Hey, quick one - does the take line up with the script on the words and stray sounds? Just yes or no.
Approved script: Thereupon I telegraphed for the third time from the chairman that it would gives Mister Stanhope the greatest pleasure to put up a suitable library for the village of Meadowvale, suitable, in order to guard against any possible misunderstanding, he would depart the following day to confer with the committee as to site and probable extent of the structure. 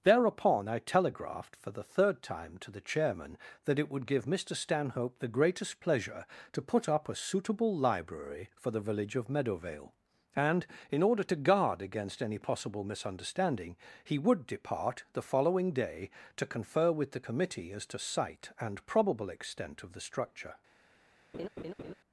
no